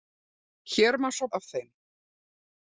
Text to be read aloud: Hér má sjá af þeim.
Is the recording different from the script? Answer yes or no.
no